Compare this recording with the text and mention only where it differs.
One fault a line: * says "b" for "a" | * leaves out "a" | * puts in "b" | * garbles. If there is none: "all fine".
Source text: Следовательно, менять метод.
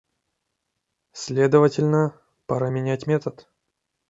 * puts in "пора"